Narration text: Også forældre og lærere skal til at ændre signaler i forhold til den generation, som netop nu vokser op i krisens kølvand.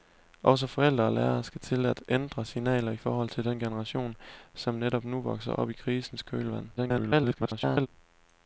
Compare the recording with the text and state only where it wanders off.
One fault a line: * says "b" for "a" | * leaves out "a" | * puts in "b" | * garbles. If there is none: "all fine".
* garbles